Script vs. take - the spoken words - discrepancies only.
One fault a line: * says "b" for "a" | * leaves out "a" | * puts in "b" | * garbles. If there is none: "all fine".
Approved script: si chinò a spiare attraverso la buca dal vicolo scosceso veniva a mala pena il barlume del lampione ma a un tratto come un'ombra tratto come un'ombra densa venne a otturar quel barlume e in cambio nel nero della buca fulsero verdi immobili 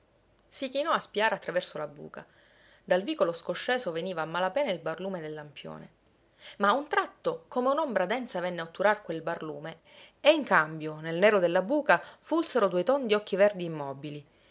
* leaves out "tratto come un'ombra"
* puts in "due tondi occhi"